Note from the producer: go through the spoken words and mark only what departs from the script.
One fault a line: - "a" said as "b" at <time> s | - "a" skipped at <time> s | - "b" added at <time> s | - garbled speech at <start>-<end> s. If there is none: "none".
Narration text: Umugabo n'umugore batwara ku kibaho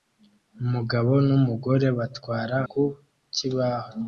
none